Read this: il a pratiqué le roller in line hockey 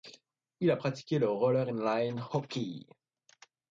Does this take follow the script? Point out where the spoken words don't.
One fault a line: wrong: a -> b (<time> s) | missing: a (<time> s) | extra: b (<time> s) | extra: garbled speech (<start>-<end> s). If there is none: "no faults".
no faults